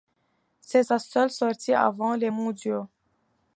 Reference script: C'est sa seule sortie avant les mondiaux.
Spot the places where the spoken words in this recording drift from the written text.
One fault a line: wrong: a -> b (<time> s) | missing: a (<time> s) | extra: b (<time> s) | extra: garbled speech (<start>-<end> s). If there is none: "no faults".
no faults